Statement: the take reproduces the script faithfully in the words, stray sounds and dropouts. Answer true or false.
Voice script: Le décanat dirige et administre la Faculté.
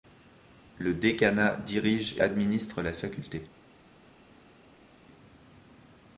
false